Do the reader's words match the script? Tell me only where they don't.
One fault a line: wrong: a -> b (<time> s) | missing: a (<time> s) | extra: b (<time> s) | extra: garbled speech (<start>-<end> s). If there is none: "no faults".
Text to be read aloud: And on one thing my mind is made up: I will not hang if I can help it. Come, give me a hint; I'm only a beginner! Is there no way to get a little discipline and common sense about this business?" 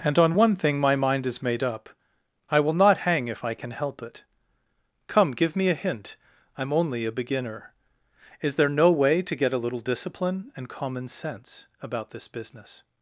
no faults